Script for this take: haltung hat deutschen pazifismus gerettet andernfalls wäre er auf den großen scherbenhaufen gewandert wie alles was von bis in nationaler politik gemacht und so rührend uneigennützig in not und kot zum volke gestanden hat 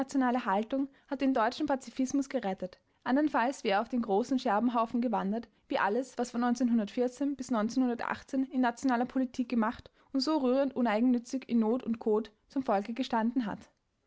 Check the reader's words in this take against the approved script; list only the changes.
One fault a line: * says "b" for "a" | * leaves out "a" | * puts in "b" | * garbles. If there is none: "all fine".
* puts in "den"